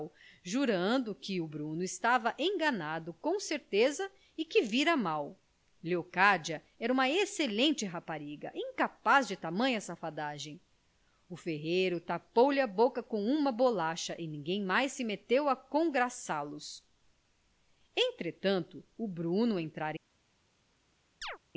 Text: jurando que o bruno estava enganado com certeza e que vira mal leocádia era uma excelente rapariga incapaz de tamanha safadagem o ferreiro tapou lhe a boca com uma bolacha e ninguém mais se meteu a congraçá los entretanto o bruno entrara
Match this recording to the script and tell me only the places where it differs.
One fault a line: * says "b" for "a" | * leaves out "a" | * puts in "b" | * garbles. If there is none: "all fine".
all fine